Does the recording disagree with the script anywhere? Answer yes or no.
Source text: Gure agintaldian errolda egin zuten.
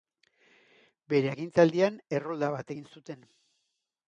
yes